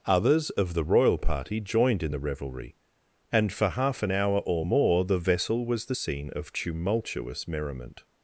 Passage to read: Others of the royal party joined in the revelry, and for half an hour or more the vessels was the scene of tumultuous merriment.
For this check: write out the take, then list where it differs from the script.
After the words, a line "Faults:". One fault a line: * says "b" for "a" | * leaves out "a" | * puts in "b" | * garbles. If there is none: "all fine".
Others of the royal party joined in the revelry, and for half an hour or more the vessel was the scene of tumultuous merriment.
Faults:
* says "vessel" for "vessels"